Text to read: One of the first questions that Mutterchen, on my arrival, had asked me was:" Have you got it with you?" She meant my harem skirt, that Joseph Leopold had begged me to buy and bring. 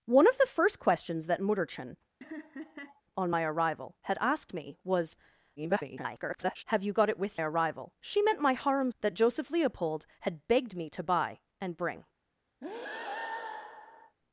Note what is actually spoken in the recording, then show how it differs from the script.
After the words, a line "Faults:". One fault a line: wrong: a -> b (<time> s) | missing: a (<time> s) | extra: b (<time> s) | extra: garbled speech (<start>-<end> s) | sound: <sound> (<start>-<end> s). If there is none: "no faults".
One of the first questions that Mutterchen, on my arrival, had asked me was:" [garbled] Have you got it with arrival?" She meant my harem that Joseph Leopold had begged me to buy and bring.
Faults:
sound: laugh (2.2-3.0 s)
extra: garbled speech (5.6-6.6 s)
wrong: you -> arrival (7.4 s)
missing: skirt (8.9 s)
sound: breath (12.6-14.2 s)